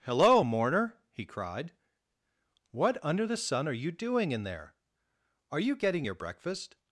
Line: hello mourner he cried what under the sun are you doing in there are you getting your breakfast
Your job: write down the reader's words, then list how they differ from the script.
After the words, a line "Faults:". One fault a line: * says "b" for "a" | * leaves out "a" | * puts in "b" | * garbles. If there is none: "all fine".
hello mourner he cried what under the sun are you doing in there are you getting your breakfast
Faults:
all fine